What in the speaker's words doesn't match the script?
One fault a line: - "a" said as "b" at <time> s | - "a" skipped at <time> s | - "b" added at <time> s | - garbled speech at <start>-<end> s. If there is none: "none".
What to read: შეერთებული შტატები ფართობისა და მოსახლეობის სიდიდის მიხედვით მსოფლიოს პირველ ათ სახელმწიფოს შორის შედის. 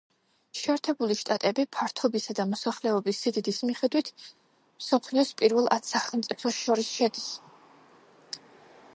none